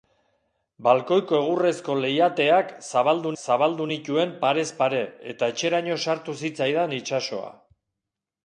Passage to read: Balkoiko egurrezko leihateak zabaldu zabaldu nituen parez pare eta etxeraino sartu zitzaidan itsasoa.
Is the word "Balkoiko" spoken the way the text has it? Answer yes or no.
yes